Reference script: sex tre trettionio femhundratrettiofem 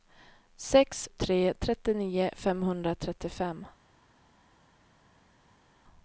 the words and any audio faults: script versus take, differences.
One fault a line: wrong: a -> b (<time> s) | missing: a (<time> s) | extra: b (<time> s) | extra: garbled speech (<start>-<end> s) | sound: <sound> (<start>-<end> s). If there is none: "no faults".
no faults